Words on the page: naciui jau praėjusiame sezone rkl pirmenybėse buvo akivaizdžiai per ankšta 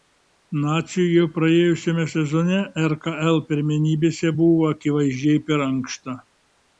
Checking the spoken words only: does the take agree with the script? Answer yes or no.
yes